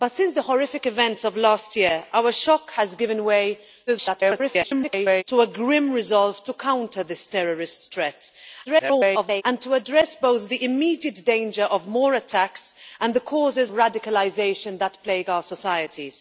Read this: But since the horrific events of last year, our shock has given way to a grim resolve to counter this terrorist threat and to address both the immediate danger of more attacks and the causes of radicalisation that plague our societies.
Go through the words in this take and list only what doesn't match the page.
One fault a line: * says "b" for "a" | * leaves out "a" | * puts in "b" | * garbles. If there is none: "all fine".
* garbles
* garbles
* leaves out "of"